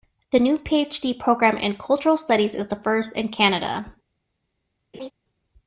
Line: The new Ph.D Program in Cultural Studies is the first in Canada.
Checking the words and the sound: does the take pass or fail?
fail